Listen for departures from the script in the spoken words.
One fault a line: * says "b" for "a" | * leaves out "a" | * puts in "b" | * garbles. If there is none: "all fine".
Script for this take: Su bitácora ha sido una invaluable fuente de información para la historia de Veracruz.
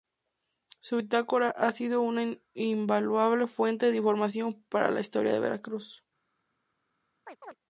all fine